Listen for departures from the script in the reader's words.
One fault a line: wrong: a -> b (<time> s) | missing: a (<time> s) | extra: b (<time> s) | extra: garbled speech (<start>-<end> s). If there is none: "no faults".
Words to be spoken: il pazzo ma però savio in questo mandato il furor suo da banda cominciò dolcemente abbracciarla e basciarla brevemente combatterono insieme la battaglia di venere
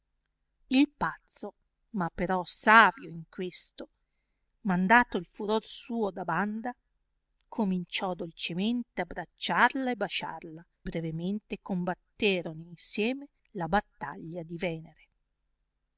no faults